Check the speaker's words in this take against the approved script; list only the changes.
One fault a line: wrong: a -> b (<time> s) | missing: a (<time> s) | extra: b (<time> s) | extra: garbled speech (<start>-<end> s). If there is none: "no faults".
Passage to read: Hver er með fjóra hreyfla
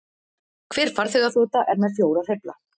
extra: farþegaþota (1.0 s)